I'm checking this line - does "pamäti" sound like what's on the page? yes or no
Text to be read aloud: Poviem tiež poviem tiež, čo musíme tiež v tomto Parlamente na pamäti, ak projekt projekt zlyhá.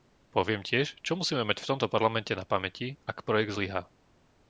yes